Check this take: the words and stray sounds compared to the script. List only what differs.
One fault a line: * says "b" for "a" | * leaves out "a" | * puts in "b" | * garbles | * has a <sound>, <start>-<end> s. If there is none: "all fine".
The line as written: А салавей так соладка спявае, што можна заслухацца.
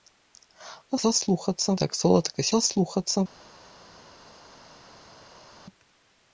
* says "заслухацца" for "салавей"
* leaves out "спявае што можна"